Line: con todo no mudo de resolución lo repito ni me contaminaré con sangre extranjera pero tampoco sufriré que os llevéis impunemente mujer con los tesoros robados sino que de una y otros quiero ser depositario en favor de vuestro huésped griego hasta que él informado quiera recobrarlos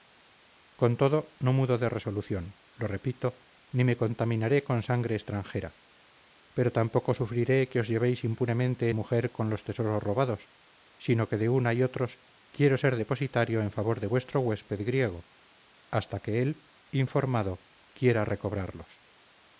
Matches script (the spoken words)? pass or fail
pass